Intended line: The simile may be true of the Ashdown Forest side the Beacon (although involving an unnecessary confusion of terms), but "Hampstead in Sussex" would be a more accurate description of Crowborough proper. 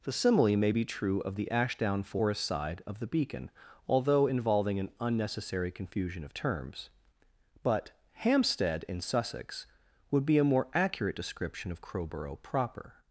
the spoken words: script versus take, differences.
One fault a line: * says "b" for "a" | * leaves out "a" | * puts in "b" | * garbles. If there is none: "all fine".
* puts in "of"